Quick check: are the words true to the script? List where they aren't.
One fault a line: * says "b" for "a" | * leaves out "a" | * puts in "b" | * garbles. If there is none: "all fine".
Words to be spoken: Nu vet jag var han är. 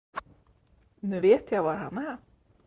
all fine